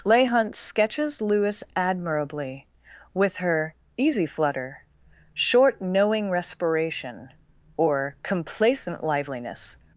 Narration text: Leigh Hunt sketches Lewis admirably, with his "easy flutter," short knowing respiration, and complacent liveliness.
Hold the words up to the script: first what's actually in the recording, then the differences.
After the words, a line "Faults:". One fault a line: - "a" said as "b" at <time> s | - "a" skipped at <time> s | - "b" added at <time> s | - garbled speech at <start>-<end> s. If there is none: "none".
Leigh Hunt sketches Lewis admirably, with her "easy flutter," short knowing respiration, or complacent liveliness.
Faults:
- "his" said as "her" at 3.4 s
- "and" said as "or" at 7.8 s